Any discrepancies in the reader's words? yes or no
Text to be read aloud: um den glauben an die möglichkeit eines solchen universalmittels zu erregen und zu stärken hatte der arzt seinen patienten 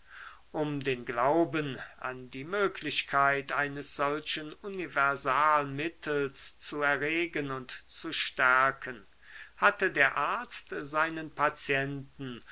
no